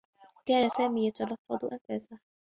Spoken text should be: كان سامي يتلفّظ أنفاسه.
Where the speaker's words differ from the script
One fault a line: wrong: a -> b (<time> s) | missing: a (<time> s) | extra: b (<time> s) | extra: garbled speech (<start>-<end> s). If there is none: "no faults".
no faults